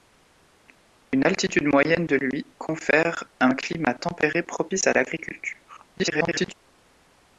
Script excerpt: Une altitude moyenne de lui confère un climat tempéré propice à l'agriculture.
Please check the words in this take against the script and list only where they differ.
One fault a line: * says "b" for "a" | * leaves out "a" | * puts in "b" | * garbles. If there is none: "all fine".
* garbles